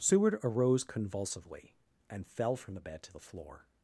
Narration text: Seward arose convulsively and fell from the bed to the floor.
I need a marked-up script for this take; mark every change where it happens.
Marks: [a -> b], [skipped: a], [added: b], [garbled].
Seward arose convulsively and fell from the bed to the floor.